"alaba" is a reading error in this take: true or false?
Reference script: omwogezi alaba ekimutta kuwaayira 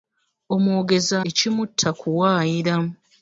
true